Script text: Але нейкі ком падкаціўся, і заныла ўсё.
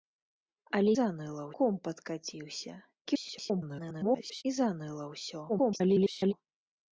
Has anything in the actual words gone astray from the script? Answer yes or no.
yes